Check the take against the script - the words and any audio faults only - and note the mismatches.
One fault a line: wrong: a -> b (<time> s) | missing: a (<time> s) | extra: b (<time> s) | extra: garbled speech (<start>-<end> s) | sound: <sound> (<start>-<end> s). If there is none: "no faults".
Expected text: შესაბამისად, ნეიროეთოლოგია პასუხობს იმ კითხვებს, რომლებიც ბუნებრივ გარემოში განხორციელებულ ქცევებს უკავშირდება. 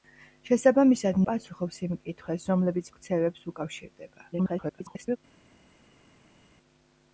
missing: ნეიროეთოლოგია (1.2 s)
missing: ბუნებრივ გარემოში განხორციელებულ (2.9 s)
extra: garbled speech (4.3-5.2 s)